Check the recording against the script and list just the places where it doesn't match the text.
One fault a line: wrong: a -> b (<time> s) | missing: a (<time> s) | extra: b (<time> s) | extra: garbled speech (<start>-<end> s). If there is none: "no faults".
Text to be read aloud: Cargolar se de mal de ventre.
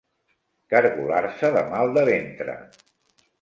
no faults